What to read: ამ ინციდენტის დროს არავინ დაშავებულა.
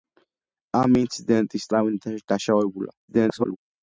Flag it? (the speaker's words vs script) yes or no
yes